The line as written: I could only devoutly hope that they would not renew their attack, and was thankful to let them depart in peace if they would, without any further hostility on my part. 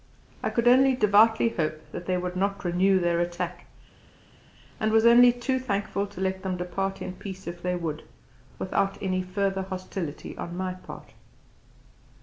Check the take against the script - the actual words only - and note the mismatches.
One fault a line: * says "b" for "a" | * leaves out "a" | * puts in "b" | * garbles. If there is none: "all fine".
* puts in "only too"